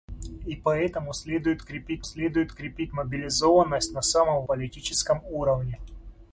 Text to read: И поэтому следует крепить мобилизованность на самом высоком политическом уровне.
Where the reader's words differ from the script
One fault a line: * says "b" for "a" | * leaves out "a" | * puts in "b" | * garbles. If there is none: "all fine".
* puts in "следует крепить"
* leaves out "высоком"